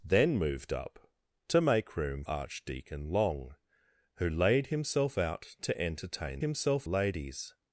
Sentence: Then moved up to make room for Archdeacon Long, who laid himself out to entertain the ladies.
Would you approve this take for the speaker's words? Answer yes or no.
no